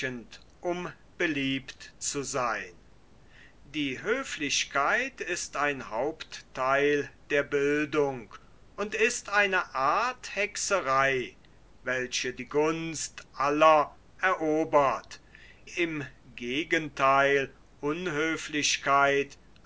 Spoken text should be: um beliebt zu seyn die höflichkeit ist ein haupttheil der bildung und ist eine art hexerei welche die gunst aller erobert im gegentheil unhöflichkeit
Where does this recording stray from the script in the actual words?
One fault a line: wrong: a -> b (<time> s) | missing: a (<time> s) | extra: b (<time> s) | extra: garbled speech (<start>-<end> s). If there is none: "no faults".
no faults